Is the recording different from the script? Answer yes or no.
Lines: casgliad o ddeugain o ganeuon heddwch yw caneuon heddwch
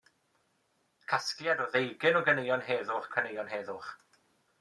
no